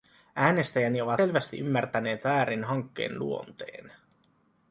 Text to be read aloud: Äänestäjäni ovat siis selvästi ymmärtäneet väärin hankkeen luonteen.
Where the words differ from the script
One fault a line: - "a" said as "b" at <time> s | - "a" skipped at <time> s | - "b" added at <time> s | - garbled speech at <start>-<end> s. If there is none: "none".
- "siis" skipped at 1.2 s